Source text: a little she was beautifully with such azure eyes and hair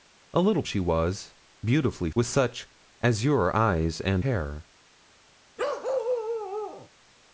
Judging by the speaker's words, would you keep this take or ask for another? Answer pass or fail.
pass